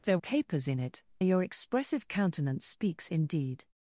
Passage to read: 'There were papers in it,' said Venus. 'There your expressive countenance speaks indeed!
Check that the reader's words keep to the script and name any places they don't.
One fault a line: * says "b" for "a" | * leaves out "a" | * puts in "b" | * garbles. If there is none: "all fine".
* leaves out "were"
* leaves out "said Venus There"